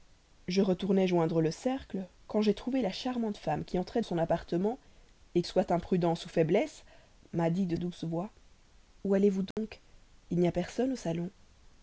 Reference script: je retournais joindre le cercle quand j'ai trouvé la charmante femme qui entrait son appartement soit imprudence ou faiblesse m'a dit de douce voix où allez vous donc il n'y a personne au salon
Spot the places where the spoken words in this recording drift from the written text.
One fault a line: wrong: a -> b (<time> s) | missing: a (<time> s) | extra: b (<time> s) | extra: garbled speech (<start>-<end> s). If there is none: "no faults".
no faults